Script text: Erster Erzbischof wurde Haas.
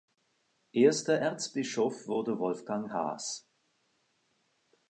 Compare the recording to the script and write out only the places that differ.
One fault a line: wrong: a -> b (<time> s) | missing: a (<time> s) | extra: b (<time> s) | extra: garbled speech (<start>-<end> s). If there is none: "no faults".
extra: Wolfgang (2.4 s)